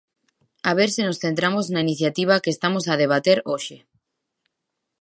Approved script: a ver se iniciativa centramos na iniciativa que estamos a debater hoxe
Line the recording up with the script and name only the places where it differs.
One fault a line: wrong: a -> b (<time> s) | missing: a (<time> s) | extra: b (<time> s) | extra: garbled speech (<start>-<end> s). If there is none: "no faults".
wrong: iniciativa -> nos (1.1 s)